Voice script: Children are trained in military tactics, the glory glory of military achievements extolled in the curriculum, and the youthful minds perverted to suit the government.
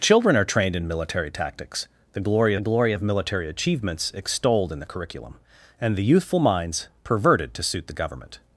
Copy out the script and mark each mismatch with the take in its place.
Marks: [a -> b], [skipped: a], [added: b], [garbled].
Children are trained in military tactics, the glory glory of military achievements extolled in the curriculum, and the youthful minds perverted to suit the government.